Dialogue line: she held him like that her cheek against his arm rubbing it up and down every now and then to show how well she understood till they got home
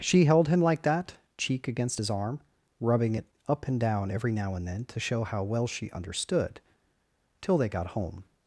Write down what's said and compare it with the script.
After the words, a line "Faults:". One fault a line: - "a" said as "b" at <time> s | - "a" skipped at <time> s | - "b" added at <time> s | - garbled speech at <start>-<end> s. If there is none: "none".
she held him like that cheek against his arm rubbing it up and down every now and then to show how well she understood till they got home
Faults:
- "her" skipped at 1.1 s